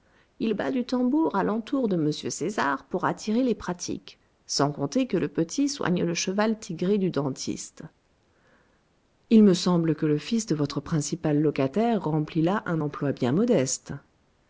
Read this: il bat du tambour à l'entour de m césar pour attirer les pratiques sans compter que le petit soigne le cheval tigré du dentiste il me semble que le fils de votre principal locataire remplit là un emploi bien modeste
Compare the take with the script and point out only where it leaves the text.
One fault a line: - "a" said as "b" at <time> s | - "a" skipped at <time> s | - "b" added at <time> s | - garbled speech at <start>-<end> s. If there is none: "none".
none